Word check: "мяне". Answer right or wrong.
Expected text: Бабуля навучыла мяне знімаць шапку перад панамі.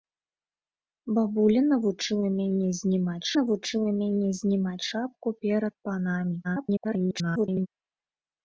right